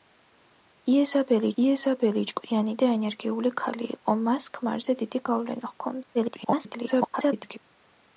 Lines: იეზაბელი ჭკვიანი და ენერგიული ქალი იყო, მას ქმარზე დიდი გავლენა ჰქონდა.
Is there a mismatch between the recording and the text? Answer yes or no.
yes